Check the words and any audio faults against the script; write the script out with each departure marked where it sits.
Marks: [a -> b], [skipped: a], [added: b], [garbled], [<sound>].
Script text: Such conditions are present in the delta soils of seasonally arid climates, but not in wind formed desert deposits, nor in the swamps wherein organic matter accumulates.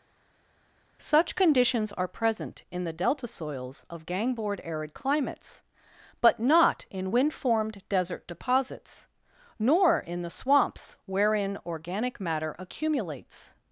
Such conditions are present in the delta soils of [seasonally -> gangboard] arid climates, but not in wind formed desert deposits, nor in the swamps wherein organic matter accumulates.